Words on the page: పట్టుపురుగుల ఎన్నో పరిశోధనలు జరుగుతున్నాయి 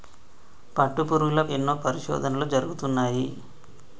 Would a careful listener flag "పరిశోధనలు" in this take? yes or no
no